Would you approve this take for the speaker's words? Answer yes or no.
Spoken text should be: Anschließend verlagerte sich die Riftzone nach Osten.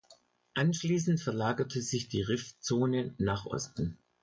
yes